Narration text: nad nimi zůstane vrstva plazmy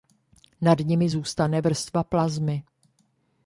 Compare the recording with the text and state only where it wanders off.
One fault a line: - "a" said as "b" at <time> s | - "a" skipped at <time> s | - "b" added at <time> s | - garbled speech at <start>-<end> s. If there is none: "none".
none